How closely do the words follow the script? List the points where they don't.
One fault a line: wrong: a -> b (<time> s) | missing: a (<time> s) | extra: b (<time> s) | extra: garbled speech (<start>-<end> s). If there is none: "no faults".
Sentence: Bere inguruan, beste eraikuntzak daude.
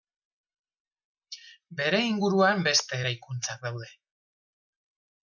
no faults